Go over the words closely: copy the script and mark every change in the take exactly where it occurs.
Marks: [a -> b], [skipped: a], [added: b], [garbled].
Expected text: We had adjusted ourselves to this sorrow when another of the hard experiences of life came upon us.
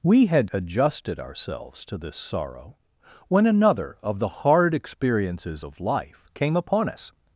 We had adjusted ourselves to this sorrow when another of the hard experiences of life came upon us.